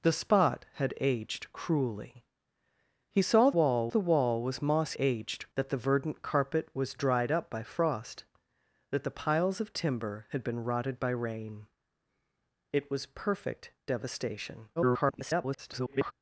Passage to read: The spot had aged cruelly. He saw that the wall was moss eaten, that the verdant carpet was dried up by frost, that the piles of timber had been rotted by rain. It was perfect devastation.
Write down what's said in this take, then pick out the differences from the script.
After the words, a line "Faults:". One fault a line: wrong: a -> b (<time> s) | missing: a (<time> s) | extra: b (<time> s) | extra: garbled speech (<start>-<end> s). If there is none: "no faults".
The spot had aged cruelly. He saw wall the wall was moss aged, that the verdant carpet was dried up by frost, that the piles of timber had been rotted by rain. It was perfect devastation. [garbled]
Faults:
wrong: that -> wall (3.6 s)
wrong: eaten -> aged (5.0 s)
extra: garbled speech (14.8-16.1 s)